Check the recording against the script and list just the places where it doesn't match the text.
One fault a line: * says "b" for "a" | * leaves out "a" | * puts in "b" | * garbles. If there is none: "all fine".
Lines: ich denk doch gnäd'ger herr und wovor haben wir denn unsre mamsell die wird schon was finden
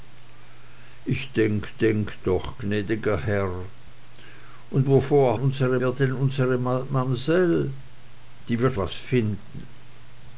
* puts in "denk"
* says "unsre" for "haben"
* leaves out "schon"